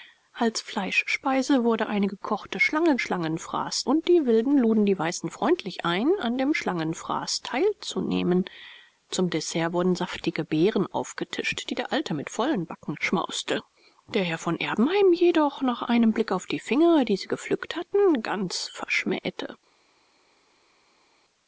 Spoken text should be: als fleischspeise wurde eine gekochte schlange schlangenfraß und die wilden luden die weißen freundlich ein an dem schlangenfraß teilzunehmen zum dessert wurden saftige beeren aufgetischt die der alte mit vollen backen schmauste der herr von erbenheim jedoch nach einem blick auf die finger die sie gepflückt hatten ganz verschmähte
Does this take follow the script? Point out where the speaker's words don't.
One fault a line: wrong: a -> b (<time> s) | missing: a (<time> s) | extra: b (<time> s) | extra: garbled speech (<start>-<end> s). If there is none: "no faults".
no faults